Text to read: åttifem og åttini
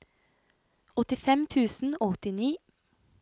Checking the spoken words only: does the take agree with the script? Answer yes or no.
no